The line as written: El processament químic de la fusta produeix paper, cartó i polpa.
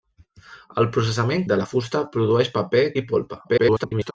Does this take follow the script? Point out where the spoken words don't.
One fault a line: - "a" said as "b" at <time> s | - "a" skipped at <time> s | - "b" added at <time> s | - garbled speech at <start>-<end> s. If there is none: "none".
- "químic" skipped at 1.4 s
- "cartó" skipped at 2.9 s
- garbled speech at 3.4-4.1 s